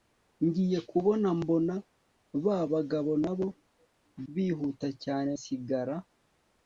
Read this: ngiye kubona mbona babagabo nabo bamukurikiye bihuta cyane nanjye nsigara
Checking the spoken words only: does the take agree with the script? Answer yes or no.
no